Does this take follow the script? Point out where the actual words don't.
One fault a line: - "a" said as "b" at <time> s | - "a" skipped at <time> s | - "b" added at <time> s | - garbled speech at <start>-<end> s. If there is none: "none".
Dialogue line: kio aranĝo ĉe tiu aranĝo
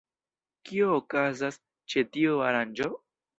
- "aranĝo" said as "okazas" at 1.0 s